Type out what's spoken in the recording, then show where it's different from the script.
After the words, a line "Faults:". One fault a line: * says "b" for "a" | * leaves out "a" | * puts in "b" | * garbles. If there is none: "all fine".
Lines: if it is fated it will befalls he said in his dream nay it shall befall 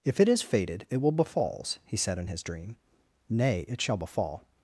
if it is fated it will befalls he said in his dream nay it shall befall
Faults:
all fine